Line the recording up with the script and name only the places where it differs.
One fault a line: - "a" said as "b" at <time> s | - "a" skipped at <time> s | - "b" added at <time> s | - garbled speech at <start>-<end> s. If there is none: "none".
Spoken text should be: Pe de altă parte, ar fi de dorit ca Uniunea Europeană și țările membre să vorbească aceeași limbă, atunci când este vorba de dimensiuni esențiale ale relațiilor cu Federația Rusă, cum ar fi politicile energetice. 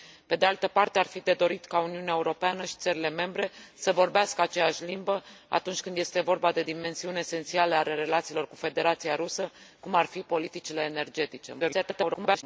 - garbled speech at 11.6-12.4 s